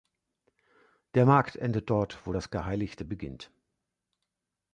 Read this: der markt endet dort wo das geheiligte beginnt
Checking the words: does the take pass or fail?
pass